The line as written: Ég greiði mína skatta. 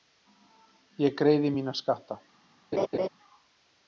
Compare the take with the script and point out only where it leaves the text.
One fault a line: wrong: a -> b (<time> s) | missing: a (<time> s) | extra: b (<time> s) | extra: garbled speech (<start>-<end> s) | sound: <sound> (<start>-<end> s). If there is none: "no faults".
sound: laugh (2.7-3.1 s)